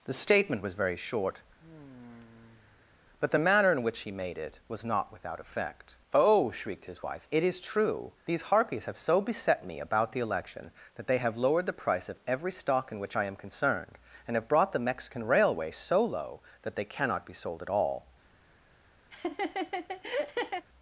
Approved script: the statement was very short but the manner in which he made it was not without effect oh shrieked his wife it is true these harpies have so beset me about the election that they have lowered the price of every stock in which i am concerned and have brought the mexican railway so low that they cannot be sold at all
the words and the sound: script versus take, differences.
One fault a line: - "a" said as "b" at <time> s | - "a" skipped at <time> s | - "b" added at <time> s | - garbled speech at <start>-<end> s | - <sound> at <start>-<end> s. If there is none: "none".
- sigh at 1.6-3.0 s
- laugh at 19.1-20.7 s